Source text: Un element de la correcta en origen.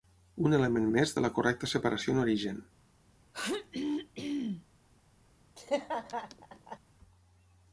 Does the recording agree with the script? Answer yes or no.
no